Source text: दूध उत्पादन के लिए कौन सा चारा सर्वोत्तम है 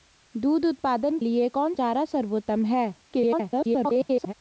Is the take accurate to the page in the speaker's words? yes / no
no